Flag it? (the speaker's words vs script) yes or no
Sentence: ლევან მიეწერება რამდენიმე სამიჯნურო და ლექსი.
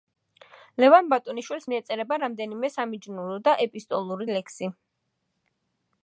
yes